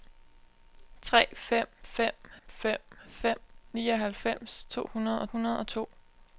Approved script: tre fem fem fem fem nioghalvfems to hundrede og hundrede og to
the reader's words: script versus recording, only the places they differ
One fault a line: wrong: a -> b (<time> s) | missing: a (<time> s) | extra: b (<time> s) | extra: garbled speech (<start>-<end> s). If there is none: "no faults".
no faults